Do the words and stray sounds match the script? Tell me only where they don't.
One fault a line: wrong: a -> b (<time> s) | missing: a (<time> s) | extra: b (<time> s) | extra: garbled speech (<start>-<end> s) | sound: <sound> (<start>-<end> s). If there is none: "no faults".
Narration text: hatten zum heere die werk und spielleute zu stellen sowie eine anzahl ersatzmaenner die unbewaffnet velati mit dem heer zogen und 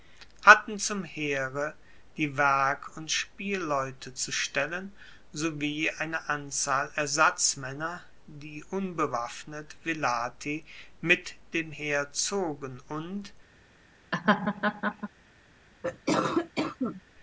sound: laugh (14.1-15.1 s)
sound: cough (15.8-17.0 s)